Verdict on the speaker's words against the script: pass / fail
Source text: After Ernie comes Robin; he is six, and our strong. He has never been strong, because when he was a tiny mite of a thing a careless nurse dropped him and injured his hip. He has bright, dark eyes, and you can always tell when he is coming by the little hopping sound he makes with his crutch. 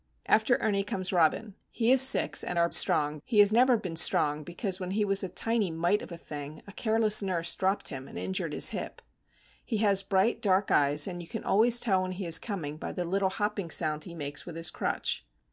pass